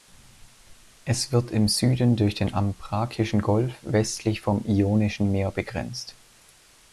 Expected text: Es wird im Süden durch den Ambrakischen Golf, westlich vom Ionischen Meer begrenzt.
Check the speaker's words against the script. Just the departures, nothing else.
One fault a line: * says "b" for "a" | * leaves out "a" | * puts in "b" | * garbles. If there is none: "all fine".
all fine